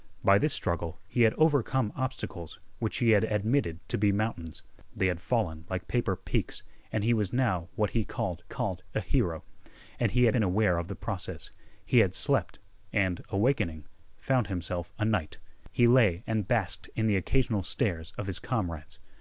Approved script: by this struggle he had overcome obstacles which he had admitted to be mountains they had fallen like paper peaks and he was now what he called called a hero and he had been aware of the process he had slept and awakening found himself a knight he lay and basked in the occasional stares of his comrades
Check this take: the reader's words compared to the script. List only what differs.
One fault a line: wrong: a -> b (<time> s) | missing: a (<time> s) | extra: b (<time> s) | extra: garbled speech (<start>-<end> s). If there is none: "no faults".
no faults